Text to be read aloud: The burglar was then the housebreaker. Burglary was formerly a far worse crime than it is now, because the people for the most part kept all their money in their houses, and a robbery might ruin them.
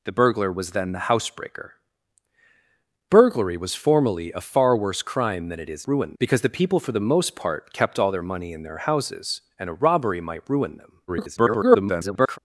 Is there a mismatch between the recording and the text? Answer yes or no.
yes